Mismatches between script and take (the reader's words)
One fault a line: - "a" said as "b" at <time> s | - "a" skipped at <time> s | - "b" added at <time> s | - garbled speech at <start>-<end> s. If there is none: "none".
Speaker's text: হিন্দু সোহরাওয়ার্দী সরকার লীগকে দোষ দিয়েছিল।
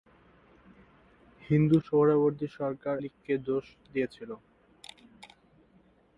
none